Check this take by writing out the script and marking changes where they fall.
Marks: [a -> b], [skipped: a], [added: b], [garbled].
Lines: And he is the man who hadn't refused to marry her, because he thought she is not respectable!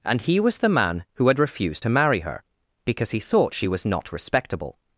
And he [is -> was] the man who [hadn't -> had] refused to marry her, because he thought she [is -> was] not respectable!